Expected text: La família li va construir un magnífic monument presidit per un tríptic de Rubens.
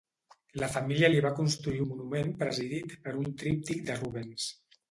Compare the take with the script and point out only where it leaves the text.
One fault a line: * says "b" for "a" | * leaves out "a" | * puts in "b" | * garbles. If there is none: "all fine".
* leaves out "un magnífic"